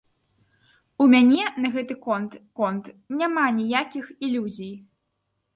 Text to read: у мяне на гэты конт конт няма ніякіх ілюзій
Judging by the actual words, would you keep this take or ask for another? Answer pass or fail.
pass